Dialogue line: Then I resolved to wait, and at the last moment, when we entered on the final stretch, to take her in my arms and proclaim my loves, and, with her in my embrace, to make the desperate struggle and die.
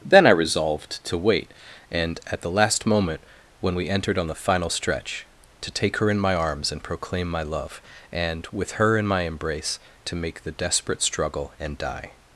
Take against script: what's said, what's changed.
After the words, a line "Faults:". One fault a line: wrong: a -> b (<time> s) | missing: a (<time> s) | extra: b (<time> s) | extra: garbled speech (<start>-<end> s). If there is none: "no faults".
Then I resolved to wait, and at the last moment, when we entered on the final stretch, to take her in my arms and proclaim my love, and, with her in my embrace, to make the desperate struggle and die.
Faults:
wrong: loves -> love (7.4 s)